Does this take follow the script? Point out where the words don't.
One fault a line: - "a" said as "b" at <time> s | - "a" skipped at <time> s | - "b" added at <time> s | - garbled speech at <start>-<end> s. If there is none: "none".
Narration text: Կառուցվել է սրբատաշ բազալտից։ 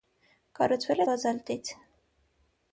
- "սրբատաշ" skipped at 1.0 s